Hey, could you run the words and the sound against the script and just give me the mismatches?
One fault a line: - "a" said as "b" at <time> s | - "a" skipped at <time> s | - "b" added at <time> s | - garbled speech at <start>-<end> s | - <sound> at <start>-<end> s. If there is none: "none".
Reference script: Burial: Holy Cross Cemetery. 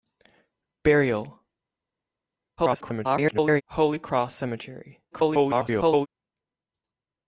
- garbled speech at 2.6-3.6 s
- garbled speech at 5.1-6.1 s